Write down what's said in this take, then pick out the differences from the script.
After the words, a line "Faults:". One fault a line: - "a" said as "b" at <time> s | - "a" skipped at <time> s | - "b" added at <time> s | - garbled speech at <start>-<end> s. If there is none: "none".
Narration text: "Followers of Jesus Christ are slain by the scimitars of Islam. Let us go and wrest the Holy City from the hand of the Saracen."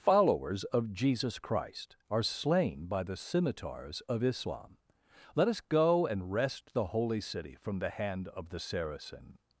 "Followers of Jesus Christ are slain by the scimitars of Islam. Let us go and wrest the Holy City from the hand of the Saracen."
Faults:
none